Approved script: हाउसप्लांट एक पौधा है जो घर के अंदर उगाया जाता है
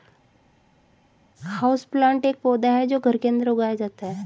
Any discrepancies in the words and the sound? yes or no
no